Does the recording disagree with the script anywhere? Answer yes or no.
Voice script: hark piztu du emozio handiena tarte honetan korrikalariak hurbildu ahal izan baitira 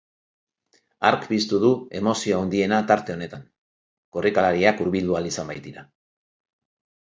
no